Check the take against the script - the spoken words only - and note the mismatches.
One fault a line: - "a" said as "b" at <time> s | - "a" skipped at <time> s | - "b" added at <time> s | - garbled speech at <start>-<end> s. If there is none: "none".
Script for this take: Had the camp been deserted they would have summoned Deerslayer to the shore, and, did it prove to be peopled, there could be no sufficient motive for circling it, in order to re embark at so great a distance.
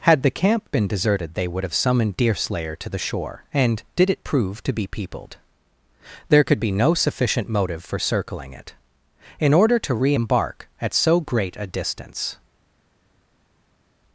none